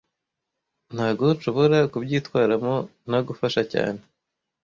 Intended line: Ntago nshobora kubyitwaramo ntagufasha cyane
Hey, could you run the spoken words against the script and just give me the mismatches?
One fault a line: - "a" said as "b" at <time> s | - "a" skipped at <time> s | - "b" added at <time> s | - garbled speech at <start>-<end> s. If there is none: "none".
none